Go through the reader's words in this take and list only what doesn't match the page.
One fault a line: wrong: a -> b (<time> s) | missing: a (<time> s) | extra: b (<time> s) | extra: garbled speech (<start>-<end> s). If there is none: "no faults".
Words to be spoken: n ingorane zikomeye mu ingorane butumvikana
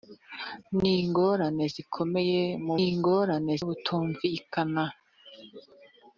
no faults